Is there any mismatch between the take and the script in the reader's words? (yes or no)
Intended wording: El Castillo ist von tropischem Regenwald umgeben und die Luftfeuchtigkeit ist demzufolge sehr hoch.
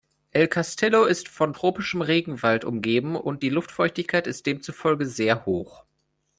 no